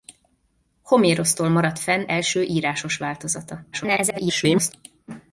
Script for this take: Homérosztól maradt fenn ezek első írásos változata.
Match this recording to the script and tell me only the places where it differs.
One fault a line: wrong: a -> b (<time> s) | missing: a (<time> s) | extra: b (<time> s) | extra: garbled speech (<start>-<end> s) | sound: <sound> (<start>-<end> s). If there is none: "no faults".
missing: ezek (2.0 s)
extra: garbled speech (3.7-4.7 s)